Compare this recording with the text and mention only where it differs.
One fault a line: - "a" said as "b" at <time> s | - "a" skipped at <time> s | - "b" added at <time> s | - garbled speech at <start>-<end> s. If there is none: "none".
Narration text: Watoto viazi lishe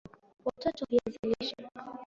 none